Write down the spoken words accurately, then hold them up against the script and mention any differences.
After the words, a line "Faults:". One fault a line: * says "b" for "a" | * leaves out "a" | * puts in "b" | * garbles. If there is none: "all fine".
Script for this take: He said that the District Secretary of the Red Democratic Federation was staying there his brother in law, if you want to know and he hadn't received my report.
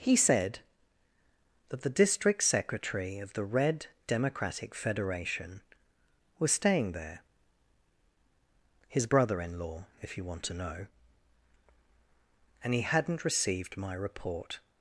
He said that the District Secretary of the Red Democratic Federation was staying there his brother in law, if you want to know and he hadn't received my report.
Faults:
all fine